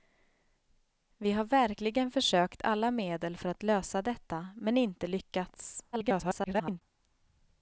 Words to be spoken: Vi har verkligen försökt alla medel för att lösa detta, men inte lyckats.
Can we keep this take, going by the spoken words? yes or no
no